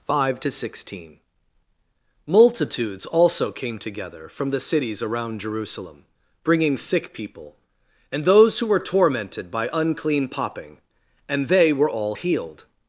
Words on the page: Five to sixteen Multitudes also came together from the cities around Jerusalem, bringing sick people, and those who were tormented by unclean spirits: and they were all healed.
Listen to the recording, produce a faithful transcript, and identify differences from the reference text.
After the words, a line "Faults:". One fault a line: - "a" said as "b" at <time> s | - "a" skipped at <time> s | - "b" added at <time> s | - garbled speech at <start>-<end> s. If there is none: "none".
Five to sixteen Multitudes also came together from the cities around Jerusalem, bringing sick people, and those who were tormented by unclean popping: and they were all healed.
Faults:
- "spirits" said as "popping" at 10.3 s